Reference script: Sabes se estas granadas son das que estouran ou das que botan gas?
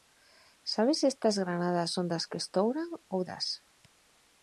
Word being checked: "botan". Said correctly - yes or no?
no